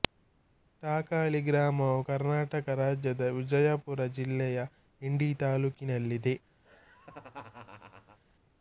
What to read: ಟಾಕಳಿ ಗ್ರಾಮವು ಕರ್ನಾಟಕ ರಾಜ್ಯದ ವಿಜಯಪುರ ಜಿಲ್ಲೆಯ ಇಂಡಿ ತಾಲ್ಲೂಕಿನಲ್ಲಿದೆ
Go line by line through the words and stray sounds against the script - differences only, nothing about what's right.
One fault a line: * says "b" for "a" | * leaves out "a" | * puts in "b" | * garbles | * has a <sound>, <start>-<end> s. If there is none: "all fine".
* has a laugh, 6.6-8.2 s